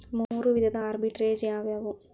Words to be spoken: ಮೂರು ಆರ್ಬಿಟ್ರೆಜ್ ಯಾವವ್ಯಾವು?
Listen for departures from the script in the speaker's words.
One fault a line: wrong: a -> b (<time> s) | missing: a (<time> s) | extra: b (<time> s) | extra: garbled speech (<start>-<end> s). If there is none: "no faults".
extra: ವಿಧದ (0.5 s)